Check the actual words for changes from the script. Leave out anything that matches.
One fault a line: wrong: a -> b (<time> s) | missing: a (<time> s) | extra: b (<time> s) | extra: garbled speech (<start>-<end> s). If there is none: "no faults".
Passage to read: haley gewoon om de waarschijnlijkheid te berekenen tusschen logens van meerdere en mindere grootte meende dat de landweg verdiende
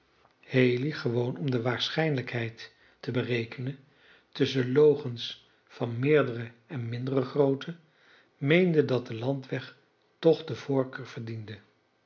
extra: toch de voorkeur (10.2 s)